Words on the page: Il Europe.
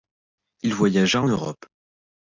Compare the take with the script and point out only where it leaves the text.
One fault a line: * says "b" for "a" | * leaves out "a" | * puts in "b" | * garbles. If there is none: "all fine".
* puts in "voyagea en"